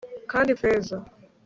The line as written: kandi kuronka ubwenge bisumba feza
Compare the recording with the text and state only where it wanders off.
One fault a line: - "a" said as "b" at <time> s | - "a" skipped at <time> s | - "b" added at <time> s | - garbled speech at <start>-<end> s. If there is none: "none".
- "kuronka ubwenge bisumba" skipped at 0.5 s